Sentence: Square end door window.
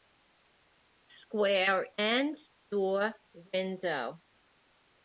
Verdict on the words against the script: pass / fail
pass